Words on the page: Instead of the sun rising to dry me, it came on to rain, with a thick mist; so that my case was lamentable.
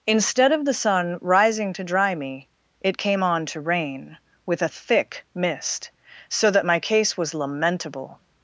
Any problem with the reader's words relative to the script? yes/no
no